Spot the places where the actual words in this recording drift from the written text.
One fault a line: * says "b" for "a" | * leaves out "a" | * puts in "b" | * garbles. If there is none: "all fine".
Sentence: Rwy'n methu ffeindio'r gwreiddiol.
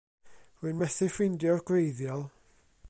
all fine